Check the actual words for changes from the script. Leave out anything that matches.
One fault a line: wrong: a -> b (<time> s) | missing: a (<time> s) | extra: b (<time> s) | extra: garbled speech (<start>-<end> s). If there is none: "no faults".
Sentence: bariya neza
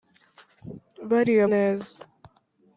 no faults